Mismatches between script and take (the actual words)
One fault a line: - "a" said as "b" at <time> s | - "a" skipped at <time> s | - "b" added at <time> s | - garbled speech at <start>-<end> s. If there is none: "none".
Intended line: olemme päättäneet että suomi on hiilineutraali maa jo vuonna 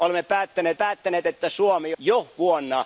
- "päättäneet" added at 0.7 s
- "on hiilineutraali maa" skipped at 2.0 s